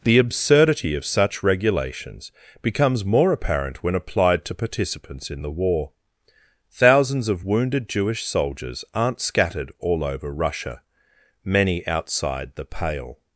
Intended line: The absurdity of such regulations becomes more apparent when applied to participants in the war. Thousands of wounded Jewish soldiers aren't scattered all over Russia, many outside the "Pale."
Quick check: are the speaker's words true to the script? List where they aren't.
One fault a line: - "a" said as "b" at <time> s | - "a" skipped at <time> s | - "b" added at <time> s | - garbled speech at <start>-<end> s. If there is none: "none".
none